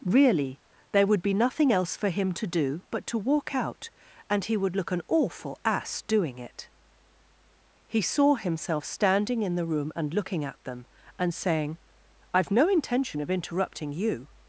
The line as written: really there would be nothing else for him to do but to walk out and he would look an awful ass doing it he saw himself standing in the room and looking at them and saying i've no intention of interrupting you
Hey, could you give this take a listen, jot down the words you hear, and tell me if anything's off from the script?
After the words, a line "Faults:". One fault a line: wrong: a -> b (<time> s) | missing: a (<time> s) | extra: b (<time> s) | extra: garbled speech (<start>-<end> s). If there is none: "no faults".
really there would be nothing else for him to do but to walk out and he would look an awful ass doing it he saw himself standing in the room and looking at them and saying i've no intention of interrupting you
Faults:
no faults